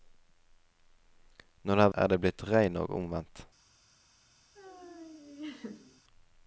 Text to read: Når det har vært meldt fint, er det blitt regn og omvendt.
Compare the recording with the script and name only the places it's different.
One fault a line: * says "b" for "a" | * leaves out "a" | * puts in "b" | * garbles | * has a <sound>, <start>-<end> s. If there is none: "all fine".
* leaves out "vært meldt fint"
* has a laugh, 4.5-6.0 s